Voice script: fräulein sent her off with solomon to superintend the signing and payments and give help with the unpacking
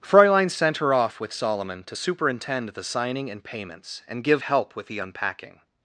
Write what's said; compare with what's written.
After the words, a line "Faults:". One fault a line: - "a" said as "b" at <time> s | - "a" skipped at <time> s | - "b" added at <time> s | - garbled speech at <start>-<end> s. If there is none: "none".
fräulein sent her off with solomon to superintend the signing and payments and give help with the unpacking
Faults:
none